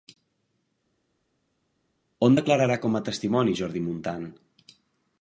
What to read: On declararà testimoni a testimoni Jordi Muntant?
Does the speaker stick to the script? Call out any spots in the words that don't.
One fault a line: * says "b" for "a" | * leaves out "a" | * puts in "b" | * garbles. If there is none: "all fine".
* says "com" for "testimoni"